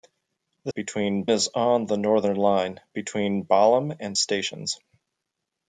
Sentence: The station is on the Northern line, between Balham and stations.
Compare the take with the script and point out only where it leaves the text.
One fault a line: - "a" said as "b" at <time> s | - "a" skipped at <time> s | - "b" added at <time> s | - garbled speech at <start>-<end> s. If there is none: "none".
- "station" said as "between" at 0.7 s